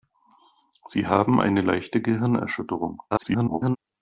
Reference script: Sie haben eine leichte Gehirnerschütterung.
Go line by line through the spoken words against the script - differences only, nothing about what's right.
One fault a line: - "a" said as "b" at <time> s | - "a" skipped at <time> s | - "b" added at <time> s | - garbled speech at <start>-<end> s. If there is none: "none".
- garbled speech at 3.1-3.8 s